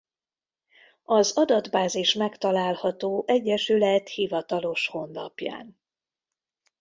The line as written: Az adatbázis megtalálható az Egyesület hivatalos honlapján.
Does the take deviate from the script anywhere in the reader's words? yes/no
yes